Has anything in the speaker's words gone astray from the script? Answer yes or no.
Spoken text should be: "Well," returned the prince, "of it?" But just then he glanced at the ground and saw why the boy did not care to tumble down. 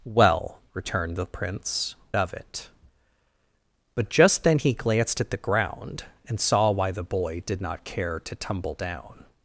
no